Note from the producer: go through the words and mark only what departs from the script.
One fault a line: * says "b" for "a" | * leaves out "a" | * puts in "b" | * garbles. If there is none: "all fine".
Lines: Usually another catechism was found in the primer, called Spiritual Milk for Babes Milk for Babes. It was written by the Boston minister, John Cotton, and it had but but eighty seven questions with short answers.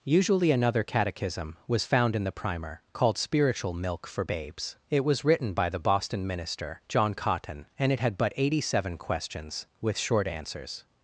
* leaves out "Milk for Babes"
* leaves out "but"